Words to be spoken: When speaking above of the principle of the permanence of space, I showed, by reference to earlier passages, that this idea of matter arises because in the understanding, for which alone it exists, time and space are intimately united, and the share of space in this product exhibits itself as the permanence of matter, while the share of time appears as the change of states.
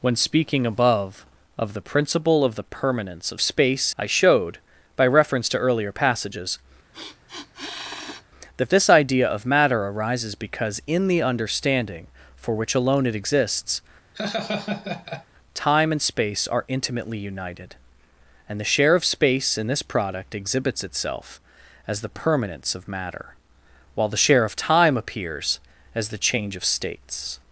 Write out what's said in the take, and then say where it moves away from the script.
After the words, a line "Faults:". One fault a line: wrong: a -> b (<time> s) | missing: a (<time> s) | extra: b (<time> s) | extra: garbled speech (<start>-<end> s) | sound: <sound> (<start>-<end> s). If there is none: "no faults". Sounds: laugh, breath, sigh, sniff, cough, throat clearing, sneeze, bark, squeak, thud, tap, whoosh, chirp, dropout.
When speaking above of the principle of the permanence of space, I showed, by reference to earlier passages, that this idea of matter arises because in the understanding, for which alone it exists, time and space are intimately united, and the share of space in this product exhibits itself as the permanence of matter, while the share of time appears as the change of states.
Faults:
sound: sniff (6.9-8.2 s)
sound: laugh (14.1-15.3 s)